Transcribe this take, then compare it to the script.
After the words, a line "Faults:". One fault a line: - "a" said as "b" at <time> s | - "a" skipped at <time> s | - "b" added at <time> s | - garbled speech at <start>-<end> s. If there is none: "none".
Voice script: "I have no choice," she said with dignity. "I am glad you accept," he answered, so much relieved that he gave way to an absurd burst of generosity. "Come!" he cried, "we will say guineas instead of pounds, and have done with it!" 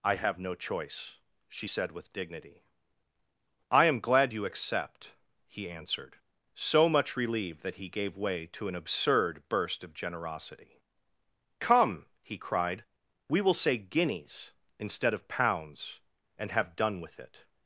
"I have no choice," she said with dignity. "I am glad you accept," he answered, so much relieved that he gave way to an absurd burst of generosity. "Come!" he cried, "we will say guineas instead of pounds, and have done with it!"
Faults:
none